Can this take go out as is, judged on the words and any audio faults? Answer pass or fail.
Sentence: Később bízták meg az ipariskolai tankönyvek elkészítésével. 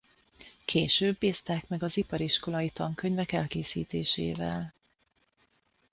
pass